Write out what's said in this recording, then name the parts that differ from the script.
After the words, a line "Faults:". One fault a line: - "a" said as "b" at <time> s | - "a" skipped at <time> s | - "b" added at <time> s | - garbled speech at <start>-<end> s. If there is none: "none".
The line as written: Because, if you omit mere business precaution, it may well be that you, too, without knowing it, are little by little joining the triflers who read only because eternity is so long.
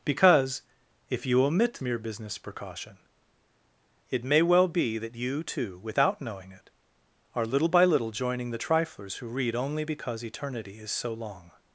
Because, if you omit mere business precaution, it may well be that you, too, without knowing it, are little by little joining the triflers who read only because eternity is so long.
Faults:
none